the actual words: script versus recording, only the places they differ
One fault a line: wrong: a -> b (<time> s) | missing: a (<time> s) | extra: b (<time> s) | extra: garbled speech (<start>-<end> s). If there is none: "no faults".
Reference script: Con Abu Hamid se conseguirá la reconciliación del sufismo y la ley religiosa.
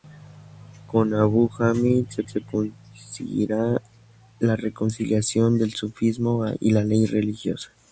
extra: se (2.2 s)